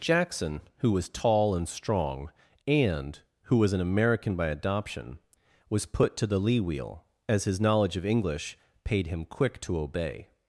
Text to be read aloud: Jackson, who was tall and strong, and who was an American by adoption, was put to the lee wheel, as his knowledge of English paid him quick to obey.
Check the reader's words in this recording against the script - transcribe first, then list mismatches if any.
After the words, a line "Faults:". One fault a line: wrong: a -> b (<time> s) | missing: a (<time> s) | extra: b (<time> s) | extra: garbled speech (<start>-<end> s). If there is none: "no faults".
Jackson, who was tall and strong, and who was an American by adoption, was put to the lee wheel, as his knowledge of English paid him quick to obey.
Faults:
no faults